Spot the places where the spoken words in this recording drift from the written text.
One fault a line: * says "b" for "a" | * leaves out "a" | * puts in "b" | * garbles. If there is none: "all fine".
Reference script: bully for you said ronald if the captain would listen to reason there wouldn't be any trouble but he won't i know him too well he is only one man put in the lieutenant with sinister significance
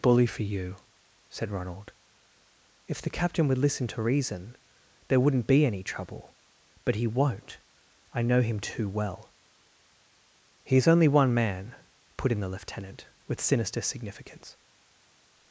all fine